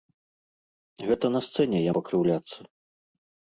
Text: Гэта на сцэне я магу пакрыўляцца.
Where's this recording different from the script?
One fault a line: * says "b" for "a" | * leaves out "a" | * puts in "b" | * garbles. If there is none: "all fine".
* leaves out "магу"